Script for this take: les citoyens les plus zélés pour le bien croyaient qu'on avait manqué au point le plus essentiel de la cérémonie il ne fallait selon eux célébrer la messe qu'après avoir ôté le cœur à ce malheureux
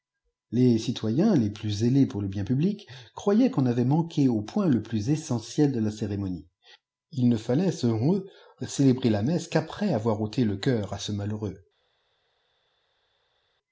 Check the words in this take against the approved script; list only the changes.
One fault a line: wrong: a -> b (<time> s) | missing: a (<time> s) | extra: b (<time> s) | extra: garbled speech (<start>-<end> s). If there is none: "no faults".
extra: public (2.4 s)